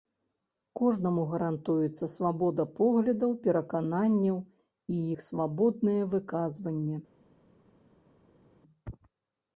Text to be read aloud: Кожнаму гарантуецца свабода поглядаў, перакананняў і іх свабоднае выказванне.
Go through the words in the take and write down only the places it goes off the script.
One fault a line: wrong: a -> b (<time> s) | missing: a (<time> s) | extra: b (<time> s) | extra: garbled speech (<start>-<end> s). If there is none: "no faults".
no faults